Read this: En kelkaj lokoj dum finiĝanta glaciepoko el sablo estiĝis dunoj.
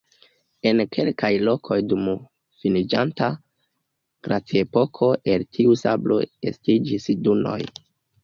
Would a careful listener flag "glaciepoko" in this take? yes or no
no